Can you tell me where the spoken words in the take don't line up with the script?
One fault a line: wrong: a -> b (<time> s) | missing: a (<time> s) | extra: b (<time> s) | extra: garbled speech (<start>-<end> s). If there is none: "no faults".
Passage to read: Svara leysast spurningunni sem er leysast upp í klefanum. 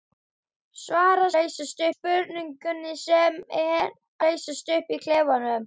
no faults